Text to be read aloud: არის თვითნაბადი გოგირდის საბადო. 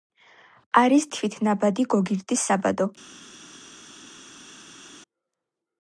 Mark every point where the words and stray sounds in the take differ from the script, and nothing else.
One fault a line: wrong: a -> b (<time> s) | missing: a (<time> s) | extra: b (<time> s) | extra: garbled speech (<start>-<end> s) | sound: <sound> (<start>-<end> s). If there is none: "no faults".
no faults